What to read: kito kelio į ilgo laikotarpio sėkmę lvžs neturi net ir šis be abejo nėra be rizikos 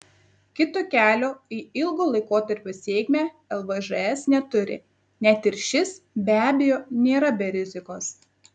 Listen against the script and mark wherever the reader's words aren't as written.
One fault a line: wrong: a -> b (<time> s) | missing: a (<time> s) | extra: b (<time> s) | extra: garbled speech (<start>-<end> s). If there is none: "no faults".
no faults